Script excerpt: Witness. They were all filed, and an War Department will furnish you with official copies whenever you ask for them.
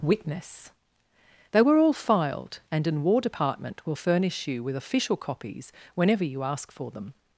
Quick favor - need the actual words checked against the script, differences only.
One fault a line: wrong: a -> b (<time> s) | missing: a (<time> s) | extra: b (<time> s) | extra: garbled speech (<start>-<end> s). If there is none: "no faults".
no faults